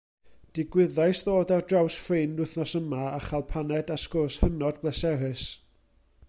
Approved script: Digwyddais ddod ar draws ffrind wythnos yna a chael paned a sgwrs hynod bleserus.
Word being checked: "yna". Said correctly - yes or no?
no